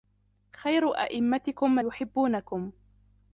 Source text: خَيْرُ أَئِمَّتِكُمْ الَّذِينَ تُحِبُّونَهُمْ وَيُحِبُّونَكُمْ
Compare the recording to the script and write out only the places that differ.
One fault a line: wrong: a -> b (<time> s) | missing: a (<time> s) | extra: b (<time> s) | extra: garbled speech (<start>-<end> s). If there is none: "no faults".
missing: الَّذِينَ تُحِبُّونَهُمْ (1.8 s)